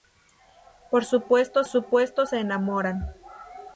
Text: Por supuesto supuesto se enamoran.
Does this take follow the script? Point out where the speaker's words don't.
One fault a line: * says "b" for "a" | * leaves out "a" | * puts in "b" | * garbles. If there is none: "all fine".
all fine